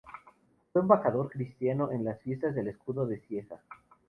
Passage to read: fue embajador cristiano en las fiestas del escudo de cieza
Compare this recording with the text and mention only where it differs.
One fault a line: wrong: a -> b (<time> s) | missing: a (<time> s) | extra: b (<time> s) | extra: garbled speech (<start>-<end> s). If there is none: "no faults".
no faults